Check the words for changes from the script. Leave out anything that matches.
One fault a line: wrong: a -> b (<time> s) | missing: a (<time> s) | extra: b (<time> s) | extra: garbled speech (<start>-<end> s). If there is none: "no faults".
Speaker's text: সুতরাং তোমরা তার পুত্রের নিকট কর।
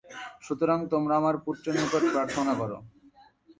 wrong: তার -> আমার (1.2 s)
extra: প্রার্থনা (2.1 s)